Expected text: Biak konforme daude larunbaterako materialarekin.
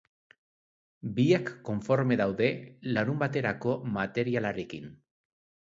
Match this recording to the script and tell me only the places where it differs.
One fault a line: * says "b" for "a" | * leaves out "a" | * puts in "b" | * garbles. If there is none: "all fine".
all fine